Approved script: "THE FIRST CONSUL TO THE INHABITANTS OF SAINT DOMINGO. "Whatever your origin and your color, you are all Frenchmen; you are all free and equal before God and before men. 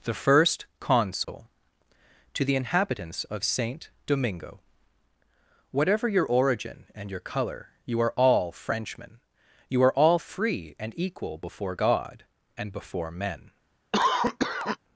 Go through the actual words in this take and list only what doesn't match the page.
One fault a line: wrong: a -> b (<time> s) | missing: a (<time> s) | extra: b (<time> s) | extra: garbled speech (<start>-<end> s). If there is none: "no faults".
no faults